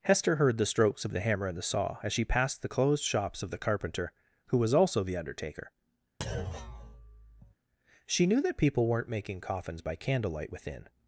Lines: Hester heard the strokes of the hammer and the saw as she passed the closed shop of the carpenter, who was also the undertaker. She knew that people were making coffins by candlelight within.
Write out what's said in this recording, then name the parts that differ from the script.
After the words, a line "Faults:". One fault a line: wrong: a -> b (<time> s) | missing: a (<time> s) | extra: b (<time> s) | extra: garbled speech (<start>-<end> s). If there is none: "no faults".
Hester heard the strokes of the hammer and the saw as she passed the closed shops of the carpenter, who was also the undertaker. She knew that people weren't making coffins by candlelight within.
Faults:
wrong: shop -> shops (3.0 s)
wrong: were -> weren't (8.9 s)